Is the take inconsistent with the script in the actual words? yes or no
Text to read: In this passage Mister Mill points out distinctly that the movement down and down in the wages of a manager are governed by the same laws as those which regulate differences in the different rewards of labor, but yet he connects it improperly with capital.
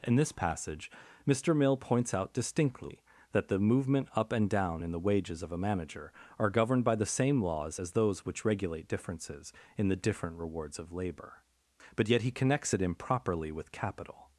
yes